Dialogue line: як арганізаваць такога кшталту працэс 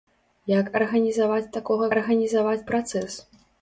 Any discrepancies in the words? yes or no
yes